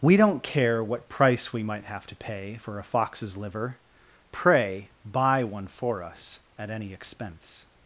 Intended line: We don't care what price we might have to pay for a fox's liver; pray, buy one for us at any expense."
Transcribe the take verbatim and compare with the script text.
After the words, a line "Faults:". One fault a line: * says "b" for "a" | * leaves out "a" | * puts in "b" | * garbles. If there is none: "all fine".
We don't care what price we might have to pay for a fox's liver; pray, buy one for us at any expense."
Faults:
all fine